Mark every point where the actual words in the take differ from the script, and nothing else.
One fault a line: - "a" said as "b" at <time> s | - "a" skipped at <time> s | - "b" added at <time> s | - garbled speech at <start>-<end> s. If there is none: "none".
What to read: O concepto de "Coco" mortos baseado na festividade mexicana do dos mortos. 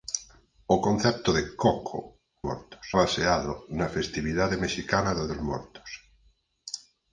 none